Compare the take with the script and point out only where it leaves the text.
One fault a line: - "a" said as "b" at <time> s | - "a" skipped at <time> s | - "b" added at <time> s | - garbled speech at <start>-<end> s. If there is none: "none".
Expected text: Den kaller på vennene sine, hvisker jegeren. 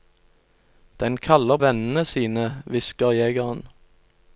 - "på" skipped at 1.6 s